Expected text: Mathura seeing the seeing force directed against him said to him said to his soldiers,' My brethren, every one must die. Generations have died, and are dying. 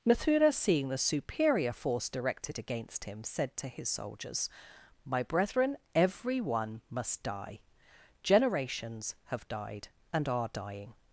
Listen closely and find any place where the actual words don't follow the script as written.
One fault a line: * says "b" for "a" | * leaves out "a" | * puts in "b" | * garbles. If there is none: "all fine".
* says "superior" for "seeing"
* leaves out "him said to"